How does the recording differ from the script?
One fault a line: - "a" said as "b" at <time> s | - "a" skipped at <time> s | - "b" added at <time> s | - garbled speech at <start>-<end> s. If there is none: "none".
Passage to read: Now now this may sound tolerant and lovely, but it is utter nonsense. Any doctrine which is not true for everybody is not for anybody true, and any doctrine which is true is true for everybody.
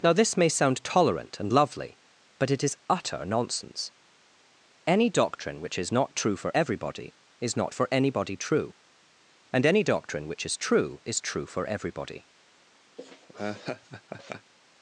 - "now" skipped at 0.1 s